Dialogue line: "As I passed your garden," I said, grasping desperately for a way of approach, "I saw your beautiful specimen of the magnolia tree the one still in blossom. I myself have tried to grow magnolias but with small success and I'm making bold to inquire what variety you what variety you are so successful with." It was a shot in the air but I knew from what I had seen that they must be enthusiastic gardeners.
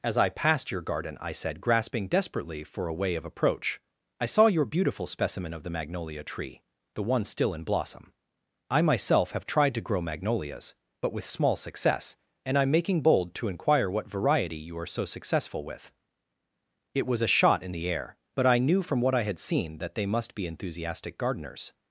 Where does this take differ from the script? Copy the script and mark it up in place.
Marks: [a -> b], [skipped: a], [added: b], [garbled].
"As I passed your garden," I said, grasping desperately for a way of approach, "I saw your beautiful specimen of the magnolia tree the one still in blossom. I myself have tried to grow magnolias but with small success and I'm making bold to inquire what variety you [skipped: what variety you] are so successful with." It was a shot in the air but I knew from what I had seen that they must be enthusiastic gardeners.